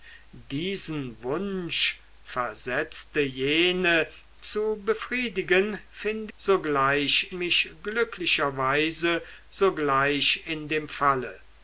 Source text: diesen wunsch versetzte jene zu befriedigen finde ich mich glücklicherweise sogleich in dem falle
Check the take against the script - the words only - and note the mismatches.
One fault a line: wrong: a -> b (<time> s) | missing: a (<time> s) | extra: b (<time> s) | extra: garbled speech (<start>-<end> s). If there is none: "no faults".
wrong: ich -> sogleich (6.4 s)